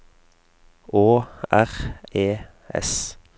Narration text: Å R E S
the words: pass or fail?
pass